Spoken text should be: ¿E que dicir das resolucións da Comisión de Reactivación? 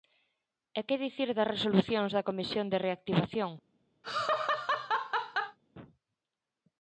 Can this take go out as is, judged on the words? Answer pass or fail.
pass